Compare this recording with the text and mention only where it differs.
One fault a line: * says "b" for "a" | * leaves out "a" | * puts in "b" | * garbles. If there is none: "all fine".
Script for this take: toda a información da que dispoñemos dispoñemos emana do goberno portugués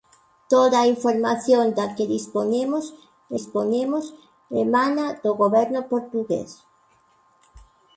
all fine